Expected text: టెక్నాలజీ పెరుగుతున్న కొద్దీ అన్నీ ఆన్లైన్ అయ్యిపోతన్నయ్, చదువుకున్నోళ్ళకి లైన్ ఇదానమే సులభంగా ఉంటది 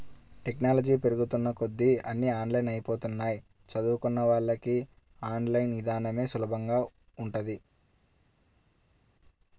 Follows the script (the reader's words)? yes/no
no